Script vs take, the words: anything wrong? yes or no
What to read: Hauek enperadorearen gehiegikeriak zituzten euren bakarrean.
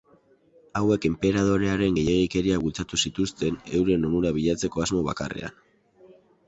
yes